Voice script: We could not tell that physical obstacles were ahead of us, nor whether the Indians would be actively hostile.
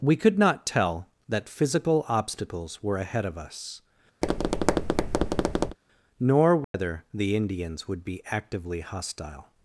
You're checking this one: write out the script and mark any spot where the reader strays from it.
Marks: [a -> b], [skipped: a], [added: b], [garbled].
We could not tell that physical obstacles were ahead of us, nor whether the Indians would be actively hostile.